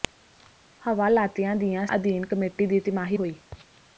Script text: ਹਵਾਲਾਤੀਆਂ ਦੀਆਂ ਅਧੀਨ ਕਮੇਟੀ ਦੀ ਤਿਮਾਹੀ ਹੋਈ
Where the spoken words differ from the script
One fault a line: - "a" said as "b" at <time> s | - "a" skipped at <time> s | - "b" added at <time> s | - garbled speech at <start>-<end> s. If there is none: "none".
none